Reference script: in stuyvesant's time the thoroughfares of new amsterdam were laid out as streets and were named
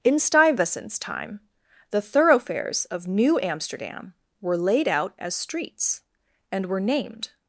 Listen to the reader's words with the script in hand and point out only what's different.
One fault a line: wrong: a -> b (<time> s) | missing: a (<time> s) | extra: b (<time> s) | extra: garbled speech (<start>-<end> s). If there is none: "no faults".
no faults